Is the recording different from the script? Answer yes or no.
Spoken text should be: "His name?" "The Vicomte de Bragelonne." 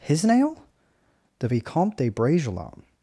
yes